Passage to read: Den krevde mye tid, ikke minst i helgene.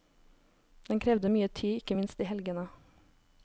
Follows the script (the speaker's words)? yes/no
yes